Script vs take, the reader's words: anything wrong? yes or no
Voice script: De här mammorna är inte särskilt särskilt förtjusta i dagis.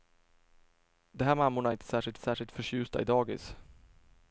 no